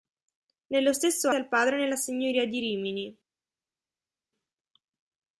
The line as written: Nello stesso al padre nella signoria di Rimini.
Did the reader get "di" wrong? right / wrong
right